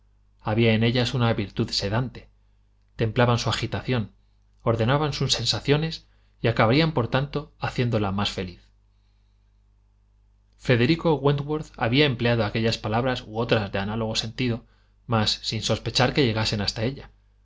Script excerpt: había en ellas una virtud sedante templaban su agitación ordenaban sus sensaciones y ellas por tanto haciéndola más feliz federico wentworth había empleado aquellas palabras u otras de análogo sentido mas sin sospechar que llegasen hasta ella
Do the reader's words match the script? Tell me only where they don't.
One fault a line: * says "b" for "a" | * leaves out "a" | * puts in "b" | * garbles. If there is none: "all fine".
* says "acabarían" for "ellas"